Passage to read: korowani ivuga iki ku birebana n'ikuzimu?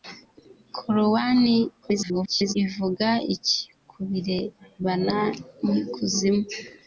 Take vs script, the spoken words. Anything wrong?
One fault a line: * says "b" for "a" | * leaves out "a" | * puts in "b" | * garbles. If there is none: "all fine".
* garbles